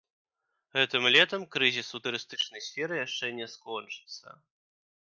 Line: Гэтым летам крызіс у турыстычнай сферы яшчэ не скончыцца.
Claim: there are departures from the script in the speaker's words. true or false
false